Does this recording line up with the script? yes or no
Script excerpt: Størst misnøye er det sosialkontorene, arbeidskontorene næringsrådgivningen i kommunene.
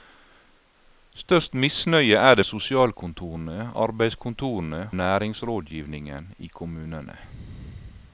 yes